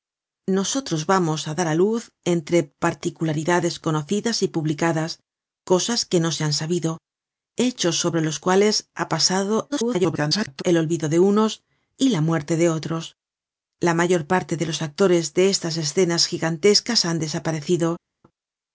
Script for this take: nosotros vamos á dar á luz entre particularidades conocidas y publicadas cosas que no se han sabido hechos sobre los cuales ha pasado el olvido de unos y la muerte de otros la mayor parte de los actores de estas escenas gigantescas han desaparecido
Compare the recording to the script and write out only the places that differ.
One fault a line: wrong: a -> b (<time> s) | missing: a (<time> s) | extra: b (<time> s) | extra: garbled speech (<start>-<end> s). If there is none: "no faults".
extra: garbled speech (9.7-10.6 s)